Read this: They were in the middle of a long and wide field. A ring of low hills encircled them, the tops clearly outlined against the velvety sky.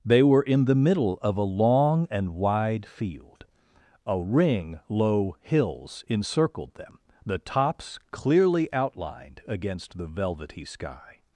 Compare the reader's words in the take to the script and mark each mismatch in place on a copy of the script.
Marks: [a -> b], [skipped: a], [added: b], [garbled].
They were in the middle of a long and wide field. A ring [skipped: of] low hills encircled them, the tops clearly outlined against the velvety sky.